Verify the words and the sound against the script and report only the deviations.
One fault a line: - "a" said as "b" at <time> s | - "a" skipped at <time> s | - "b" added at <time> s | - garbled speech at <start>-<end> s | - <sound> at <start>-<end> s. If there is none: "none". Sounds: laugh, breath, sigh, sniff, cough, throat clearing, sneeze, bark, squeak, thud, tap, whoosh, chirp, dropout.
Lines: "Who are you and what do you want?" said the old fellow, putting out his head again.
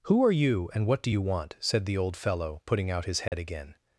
- dropout at 3.3-3.3 s